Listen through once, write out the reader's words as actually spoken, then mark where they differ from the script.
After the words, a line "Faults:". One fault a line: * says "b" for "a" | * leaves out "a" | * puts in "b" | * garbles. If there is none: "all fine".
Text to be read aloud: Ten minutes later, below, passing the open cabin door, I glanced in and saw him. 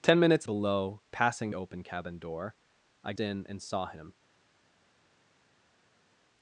Ten minutes below, passing open cabin door, I in and saw him.
Faults:
* leaves out "later"
* leaves out "the"
* leaves out "glanced"